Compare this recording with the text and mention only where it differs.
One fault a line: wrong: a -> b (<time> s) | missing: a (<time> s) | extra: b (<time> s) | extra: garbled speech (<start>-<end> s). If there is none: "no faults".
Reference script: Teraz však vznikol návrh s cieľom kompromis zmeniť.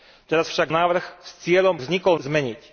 missing: vznikol (0.7 s)
wrong: kompromis -> vznikol (1.8 s)